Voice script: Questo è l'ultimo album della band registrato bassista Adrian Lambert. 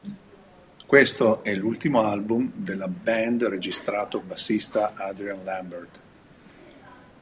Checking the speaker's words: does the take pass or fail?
pass